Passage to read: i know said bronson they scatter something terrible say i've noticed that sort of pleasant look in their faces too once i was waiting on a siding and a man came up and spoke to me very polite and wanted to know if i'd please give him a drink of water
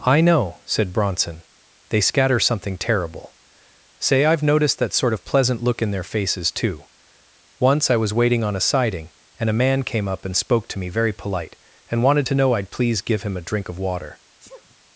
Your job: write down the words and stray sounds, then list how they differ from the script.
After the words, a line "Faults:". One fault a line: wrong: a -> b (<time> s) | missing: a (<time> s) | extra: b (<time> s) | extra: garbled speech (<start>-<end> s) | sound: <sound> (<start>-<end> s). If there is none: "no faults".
i know said bronson they scatter something terrible say i've noticed that sort of pleasant look in their faces too once i was waiting on a siding and a man came up and spoke to me very polite and wanted to know i'd please give him a drink of water
Faults:
missing: if (12.5 s)
sound: sneeze (14.4-14.8 s)